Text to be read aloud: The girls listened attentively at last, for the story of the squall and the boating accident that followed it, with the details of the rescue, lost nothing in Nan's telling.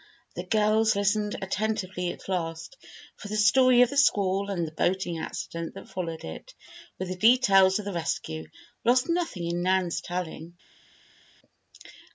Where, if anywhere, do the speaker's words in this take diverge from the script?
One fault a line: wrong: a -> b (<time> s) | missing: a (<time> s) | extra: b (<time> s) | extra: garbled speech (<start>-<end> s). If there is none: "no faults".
no faults